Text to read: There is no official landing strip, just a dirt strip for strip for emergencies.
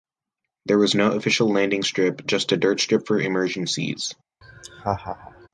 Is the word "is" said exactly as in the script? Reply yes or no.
no